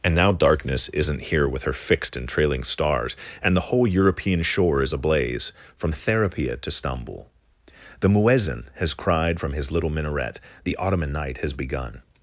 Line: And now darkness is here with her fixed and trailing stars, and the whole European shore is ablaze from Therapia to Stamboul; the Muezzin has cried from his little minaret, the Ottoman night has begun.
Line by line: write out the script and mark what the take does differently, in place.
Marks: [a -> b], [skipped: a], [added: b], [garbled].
And now darkness [is -> isn't] here with her fixed and trailing stars, and the whole European shore is ablaze from Therapia to Stamboul; the Muezzin has cried from his little minaret, the Ottoman night has begun.